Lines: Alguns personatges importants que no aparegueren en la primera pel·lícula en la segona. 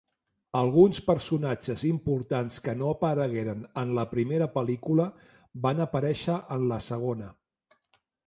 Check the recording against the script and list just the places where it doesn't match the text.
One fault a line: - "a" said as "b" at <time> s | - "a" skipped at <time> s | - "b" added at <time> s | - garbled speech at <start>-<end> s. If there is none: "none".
- "van aparèixer" added at 5.7 s